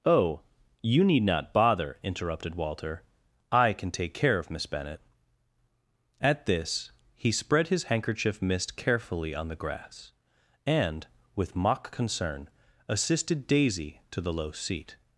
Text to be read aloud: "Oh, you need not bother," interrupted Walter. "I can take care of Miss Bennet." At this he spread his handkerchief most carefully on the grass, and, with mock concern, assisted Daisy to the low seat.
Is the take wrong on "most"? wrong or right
wrong